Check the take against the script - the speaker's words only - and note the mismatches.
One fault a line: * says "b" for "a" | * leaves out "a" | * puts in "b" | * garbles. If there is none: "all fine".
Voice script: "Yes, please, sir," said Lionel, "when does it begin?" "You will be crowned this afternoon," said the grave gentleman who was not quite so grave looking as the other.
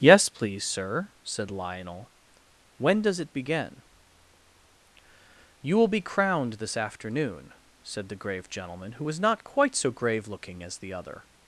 all fine